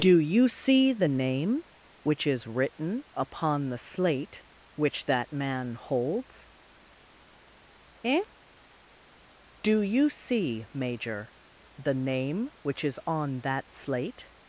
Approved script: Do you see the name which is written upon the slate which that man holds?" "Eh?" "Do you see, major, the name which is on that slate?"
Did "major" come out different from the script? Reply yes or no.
no